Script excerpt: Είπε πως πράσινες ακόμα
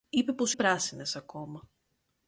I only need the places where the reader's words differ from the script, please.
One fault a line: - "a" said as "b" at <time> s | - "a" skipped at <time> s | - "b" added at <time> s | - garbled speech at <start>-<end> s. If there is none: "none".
none